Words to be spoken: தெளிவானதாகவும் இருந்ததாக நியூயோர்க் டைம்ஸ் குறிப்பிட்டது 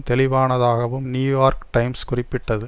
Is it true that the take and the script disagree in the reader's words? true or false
true